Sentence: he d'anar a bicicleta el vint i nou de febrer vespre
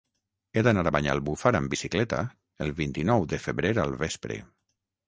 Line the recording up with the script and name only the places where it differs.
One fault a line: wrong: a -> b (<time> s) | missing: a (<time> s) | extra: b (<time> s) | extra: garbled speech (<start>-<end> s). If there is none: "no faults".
extra: banyalbufar amb (0.9 s)
extra: al (3.9 s)